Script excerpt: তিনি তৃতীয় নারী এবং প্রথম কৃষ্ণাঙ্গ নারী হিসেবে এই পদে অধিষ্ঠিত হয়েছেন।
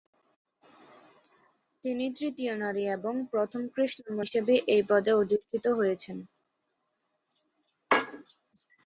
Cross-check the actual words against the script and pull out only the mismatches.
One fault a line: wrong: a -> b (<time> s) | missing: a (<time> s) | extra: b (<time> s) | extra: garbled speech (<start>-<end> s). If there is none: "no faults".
missing: নারী (4.2 s)